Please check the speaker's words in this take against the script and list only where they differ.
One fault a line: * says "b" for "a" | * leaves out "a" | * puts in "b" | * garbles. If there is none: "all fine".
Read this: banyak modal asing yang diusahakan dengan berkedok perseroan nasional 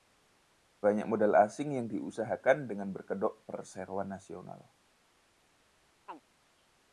all fine